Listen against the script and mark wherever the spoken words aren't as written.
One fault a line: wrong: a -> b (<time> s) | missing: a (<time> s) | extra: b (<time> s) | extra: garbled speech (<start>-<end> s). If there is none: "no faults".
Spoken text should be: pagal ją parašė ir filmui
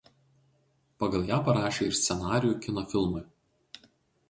extra: scenarijų kino (2.0 s)